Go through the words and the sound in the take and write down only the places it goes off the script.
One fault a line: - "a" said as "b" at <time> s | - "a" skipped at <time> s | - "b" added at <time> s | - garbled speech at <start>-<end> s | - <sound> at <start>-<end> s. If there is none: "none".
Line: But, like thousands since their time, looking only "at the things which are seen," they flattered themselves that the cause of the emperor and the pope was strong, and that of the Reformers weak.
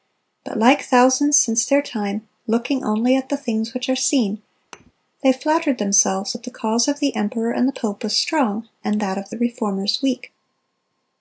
- thud at 4.7-4.9 s